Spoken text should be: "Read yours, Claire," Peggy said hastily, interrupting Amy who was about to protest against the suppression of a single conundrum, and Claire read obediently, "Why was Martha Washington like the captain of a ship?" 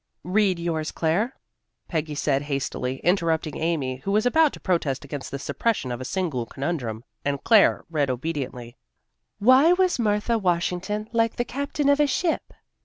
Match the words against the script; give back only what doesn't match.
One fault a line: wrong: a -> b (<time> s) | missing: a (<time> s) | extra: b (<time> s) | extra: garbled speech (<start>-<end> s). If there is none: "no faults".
no faults